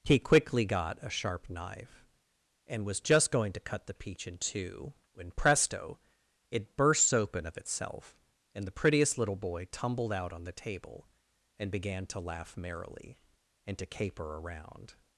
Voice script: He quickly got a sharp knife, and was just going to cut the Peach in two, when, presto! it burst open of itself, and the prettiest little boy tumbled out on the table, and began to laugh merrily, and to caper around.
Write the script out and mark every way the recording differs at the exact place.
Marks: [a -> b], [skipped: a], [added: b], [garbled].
He quickly got a sharp knife, and was just going to cut the Peach in two, when, presto! it [burst -> bursts] open of itself, and the prettiest little boy tumbled out on the table, and began to laugh merrily, and to caper around.